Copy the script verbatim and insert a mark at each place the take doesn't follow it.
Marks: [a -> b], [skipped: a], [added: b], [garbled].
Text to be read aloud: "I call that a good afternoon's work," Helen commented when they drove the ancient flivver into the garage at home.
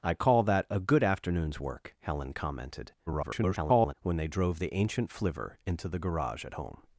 "I call that a good afternoon's work," Helen commented [garbled] when they drove the ancient flivver into the garage at home.